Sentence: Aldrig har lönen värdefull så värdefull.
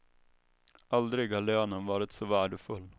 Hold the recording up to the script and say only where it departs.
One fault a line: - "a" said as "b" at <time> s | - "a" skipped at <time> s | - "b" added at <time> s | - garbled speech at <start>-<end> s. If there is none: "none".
- "värdefull" said as "varit" at 1.9 s